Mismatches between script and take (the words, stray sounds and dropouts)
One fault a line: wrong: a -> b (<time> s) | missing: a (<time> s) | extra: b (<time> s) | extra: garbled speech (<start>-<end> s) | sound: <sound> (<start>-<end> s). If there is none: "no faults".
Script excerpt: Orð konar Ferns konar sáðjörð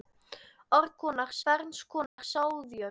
sound: dropout (2.1-2.2 s)